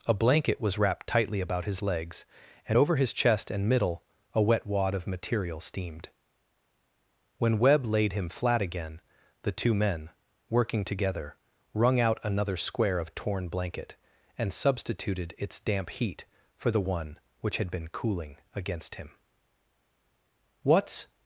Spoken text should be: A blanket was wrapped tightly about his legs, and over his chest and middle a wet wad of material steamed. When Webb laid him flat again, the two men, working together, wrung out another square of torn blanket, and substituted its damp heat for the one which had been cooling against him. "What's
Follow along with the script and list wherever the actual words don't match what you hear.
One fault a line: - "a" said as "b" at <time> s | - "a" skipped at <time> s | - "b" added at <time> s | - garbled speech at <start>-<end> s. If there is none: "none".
none